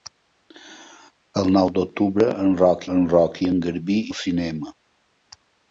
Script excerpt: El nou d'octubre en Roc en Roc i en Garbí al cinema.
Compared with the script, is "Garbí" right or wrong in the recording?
right